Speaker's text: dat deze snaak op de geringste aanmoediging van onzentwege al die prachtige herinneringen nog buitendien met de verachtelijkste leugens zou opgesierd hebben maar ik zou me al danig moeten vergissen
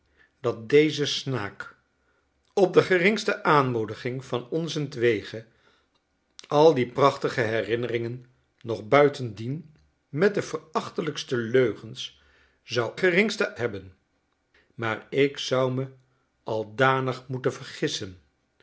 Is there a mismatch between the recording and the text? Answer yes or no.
yes